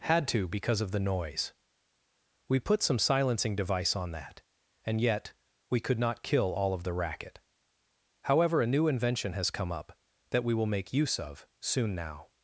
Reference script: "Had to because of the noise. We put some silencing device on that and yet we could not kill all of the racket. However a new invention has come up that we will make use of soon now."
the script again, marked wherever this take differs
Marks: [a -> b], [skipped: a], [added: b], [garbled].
"Had to because of the noise. We put some silencing device on that and yet we could not kill all of the racket. However a new invention has come up that we will make use of soon now."